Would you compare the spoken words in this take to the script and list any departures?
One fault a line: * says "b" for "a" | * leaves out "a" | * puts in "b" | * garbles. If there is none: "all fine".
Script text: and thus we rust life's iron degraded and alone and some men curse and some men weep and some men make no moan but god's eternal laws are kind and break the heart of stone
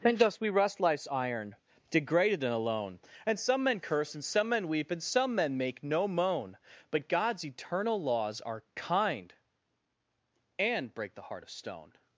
all fine